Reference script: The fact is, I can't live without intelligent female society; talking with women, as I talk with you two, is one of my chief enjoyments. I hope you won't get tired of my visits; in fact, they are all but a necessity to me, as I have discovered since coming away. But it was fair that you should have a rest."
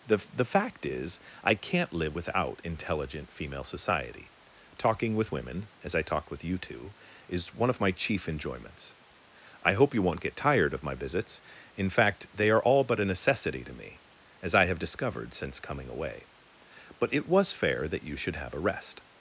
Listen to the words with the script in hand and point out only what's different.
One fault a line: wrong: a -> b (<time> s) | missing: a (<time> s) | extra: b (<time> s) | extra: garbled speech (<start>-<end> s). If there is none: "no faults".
extra: the (0.3 s)